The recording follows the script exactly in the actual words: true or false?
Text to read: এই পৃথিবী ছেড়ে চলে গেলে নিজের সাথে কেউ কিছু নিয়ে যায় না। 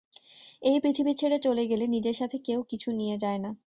true